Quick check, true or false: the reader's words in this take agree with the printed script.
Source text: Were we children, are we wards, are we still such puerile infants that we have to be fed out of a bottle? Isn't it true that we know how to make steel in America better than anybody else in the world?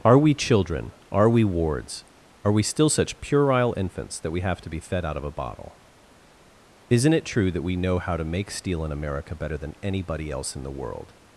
false